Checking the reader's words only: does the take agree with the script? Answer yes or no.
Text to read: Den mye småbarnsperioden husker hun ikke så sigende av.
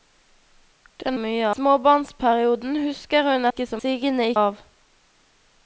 yes